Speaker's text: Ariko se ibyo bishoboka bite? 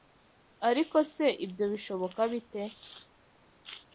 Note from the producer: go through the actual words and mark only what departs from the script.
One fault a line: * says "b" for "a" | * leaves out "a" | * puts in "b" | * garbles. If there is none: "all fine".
all fine